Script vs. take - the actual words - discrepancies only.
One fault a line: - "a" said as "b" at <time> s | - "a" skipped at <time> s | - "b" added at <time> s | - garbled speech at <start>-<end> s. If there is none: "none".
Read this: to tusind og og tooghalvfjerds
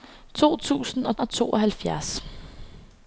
none